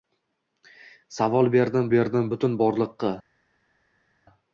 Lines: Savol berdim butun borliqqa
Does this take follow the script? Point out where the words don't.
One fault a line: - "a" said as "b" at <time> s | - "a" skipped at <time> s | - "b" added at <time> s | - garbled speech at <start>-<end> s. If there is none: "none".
- "berdim" added at 2.0 s